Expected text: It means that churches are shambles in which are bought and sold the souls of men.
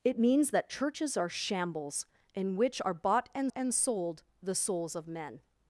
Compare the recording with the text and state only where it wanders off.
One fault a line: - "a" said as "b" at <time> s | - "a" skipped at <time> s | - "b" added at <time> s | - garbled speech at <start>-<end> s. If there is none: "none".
- "and" added at 3.5 s